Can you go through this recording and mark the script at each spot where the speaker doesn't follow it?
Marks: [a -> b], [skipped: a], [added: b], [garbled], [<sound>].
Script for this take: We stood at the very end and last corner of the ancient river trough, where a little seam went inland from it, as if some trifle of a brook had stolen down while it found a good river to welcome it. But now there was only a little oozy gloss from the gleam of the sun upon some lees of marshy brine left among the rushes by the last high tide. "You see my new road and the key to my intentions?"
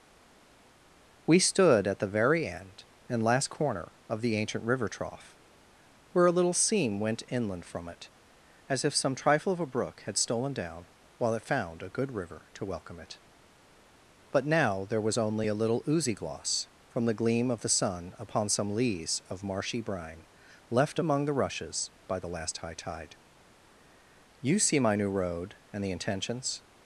We stood at the very end and last corner of the ancient river trough, where a little seam went inland from it, as if some trifle of a brook had stolen down while it found a good river to welcome it. But now there was only a little oozy gloss from the gleam of the sun upon some lees of marshy brine left among the rushes by the last high tide. "You see my new road and the [skipped: key to my] intentions?"